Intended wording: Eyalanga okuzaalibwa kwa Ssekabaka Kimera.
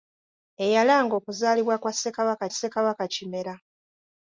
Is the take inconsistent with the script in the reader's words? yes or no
yes